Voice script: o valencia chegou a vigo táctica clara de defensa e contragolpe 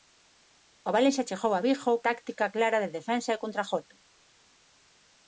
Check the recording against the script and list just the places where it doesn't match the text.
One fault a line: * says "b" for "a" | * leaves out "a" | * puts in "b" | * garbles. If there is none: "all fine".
all fine